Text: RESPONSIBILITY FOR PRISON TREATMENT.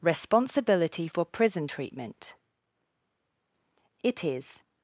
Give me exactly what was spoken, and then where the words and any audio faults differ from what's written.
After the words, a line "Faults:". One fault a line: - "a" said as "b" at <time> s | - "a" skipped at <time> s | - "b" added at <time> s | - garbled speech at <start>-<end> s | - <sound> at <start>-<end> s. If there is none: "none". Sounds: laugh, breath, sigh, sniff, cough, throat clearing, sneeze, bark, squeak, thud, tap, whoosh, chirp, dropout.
RESPONSIBILITY FOR PRISON TREATMENT. It is
Faults:
- "It is" added at 4.0 s